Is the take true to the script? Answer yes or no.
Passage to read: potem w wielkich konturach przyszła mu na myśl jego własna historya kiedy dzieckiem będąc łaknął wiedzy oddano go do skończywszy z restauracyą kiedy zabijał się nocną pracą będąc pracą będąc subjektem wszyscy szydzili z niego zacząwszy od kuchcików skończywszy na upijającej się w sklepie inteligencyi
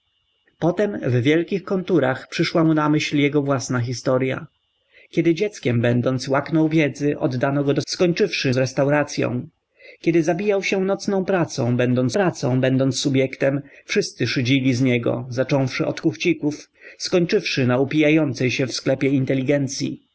yes